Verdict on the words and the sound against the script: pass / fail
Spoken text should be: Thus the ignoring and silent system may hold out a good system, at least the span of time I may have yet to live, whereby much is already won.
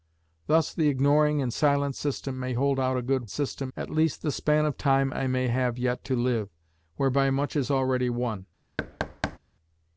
fail